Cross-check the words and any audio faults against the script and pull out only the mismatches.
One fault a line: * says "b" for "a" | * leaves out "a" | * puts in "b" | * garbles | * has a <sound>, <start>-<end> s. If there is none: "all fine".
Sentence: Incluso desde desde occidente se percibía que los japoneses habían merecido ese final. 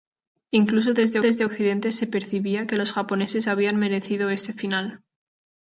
all fine